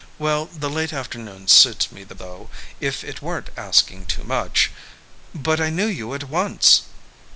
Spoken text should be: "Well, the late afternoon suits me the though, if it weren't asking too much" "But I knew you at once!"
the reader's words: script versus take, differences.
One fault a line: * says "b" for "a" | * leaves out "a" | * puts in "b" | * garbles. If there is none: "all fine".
all fine